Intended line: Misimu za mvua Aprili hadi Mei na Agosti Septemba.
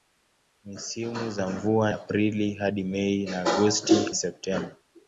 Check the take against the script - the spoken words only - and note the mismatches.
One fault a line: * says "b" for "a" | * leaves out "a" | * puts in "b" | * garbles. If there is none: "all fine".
all fine